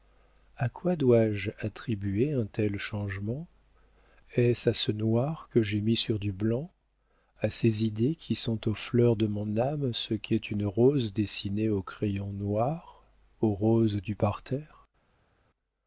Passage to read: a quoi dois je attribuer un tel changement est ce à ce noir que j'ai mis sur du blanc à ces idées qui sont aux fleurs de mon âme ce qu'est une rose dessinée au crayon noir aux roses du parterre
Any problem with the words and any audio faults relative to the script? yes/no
no